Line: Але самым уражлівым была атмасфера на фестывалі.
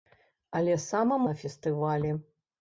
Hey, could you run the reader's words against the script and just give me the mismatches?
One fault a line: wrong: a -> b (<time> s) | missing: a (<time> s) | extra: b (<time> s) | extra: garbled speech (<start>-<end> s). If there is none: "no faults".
missing: уражлівым была атмасфера (1.3 s)